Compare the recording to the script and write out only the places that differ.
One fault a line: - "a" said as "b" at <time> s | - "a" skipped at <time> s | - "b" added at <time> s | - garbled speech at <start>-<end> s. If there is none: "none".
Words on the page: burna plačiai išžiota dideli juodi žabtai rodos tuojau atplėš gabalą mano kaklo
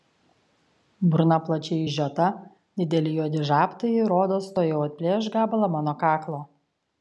none